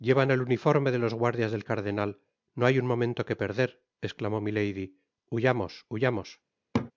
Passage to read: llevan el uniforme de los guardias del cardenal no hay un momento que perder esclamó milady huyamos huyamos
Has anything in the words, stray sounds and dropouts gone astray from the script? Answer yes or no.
yes